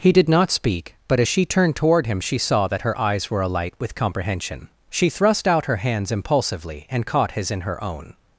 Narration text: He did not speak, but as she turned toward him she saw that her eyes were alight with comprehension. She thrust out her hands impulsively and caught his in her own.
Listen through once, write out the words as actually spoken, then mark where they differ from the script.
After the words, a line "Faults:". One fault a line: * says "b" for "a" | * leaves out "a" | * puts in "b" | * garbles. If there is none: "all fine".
He did not speak, but as she turned toward him she saw that her eyes were alight with comprehension. She thrust out her hands impulsively and caught his in her own.
Faults:
all fine